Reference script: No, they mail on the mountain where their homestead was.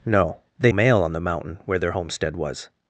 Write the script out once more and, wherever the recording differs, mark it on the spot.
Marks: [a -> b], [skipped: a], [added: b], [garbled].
No, they mail on the mountain where their homestead was.